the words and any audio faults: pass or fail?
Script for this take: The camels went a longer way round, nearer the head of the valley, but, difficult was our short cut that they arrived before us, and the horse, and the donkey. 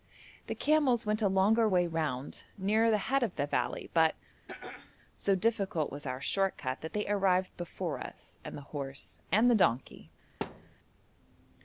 fail